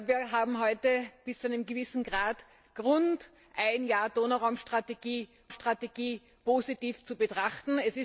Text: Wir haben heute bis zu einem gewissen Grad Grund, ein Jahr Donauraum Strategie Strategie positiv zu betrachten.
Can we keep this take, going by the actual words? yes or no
yes